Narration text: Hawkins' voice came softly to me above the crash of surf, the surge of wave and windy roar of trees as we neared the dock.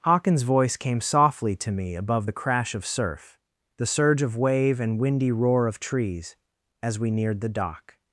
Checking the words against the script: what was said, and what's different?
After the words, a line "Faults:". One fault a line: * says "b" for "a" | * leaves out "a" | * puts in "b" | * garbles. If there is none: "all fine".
Hawkins' voice came softly to me above the crash of surf, the surge of wave and windy roar of trees as we neared the dock.
Faults:
all fine